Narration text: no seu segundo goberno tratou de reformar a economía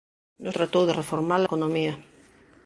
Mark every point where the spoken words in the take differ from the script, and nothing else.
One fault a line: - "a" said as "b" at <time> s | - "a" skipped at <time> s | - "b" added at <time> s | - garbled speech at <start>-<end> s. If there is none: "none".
- "seu segundo goberno" skipped at 0.5 s
- "a" skipped at 1.4 s